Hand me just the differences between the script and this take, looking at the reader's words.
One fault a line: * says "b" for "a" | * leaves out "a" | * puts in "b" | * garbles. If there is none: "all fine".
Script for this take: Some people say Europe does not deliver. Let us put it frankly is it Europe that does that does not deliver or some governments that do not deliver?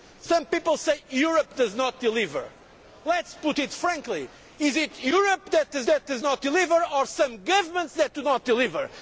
all fine